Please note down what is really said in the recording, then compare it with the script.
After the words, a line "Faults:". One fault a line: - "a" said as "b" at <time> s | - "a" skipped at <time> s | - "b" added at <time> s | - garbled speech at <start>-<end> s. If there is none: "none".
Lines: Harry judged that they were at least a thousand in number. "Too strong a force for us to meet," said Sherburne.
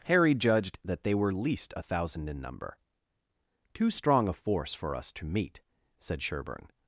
Harry judged that they were least a thousand in number. "Too strong a force for us to meet," said Sherburne.
Faults:
- "at" skipped at 1.3 s